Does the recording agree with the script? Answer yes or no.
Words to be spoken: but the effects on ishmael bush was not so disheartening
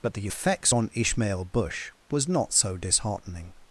yes